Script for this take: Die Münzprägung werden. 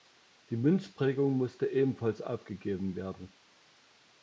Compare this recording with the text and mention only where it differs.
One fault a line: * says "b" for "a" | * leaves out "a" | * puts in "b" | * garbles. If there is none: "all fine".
* puts in "musste ebenfalls aufgegeben"